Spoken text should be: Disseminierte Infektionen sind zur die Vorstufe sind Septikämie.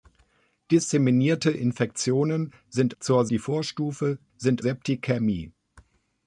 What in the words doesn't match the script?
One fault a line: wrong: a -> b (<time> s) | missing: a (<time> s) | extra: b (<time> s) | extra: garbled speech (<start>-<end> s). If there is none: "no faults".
no faults